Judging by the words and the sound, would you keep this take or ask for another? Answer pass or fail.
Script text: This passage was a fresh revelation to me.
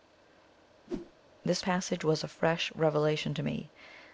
fail